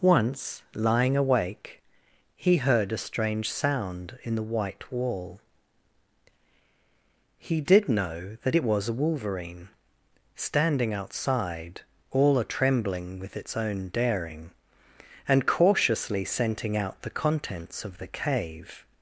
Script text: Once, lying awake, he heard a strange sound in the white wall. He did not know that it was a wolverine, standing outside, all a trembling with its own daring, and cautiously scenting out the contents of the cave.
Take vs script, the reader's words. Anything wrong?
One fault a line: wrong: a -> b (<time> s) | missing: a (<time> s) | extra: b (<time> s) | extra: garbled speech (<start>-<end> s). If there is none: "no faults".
missing: not (7.9 s)